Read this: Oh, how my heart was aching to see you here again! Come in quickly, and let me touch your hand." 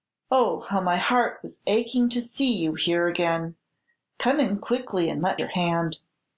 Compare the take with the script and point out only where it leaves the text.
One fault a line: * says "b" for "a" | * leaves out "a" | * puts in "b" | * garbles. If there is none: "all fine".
* leaves out "me touch"